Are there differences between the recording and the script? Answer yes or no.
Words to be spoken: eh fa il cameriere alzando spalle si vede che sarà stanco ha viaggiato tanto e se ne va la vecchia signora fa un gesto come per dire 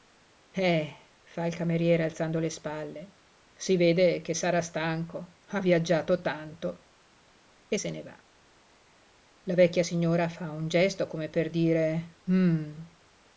yes